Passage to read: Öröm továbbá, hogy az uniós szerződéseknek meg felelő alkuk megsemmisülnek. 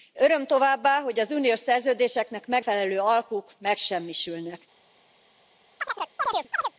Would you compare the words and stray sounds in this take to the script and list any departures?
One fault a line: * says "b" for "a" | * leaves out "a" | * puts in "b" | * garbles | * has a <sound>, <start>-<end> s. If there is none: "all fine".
* has a chirp, 5.8-6.7 s